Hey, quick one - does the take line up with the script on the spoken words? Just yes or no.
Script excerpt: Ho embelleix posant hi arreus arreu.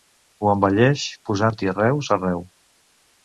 yes